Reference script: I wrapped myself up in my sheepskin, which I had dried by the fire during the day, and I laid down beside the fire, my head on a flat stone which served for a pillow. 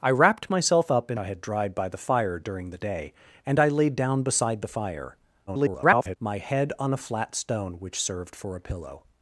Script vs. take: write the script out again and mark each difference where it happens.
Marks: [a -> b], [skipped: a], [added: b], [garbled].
I wrapped myself up in [skipped: my sheepskin, which] I had dried by the fire during the day, and I laid down beside the fire, [garbled] my head on a flat stone which served for a pillow.